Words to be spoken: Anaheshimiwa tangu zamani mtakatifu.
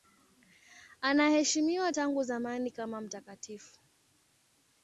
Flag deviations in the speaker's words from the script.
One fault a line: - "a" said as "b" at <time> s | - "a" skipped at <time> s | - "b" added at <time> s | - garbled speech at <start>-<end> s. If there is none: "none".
- "kama" added at 2.7 s